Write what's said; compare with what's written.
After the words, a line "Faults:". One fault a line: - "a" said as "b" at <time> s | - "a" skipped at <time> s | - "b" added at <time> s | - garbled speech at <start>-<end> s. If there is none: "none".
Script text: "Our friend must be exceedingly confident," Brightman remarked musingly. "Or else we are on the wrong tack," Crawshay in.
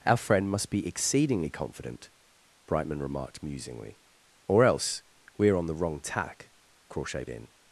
"Our friend must be exceedingly confident," Brightman remarked musingly. "Or else we are on the wrong tack," Crawshay in.
Faults:
none